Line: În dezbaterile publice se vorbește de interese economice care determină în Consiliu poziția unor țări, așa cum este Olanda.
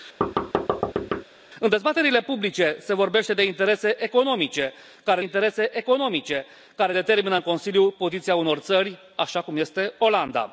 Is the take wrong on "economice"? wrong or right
right